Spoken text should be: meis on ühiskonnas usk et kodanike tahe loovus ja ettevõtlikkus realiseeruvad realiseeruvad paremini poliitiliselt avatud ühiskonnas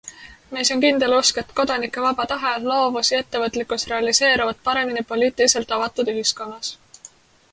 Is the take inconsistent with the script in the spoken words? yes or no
yes